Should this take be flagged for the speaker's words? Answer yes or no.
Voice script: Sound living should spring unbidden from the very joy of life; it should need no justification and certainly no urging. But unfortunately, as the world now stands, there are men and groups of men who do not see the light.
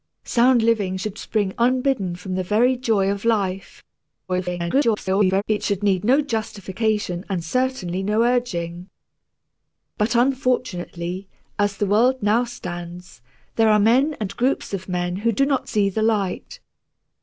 yes